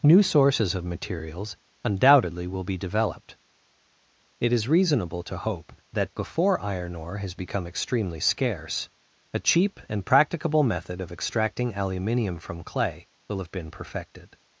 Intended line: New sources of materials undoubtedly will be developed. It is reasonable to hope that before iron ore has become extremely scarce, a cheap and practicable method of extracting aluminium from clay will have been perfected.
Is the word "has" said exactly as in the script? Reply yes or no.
yes